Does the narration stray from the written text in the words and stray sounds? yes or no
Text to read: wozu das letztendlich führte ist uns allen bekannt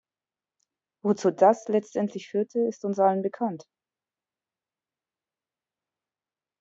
no